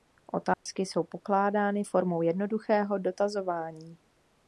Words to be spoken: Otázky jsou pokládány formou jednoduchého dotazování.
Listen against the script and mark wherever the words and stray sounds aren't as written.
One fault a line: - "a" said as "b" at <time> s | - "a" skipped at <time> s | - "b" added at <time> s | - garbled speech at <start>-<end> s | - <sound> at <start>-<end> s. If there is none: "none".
- dropout at 0.5-0.7 s